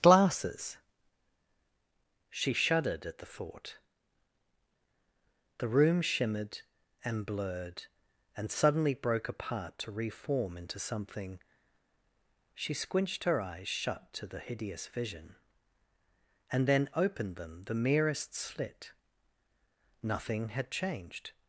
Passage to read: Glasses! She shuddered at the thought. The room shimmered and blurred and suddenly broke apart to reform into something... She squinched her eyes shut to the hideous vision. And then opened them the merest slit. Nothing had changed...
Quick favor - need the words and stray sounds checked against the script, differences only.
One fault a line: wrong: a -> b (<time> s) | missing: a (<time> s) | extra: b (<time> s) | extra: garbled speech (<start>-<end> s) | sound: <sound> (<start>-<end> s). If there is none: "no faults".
no faults